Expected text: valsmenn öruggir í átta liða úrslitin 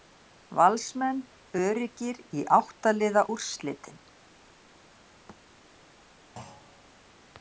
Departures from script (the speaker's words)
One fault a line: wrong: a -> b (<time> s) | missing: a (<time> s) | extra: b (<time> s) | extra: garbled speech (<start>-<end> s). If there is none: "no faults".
no faults